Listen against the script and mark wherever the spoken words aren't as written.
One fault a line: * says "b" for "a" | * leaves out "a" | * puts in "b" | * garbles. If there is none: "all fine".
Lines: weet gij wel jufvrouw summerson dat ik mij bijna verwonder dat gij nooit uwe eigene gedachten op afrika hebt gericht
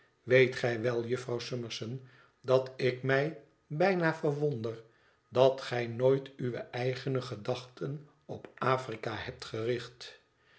all fine